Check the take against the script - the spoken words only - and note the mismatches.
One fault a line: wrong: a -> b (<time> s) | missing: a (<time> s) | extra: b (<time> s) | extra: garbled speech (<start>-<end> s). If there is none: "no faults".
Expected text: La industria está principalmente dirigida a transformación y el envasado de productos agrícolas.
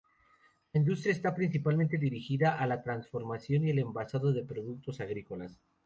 extra: la (2.6 s)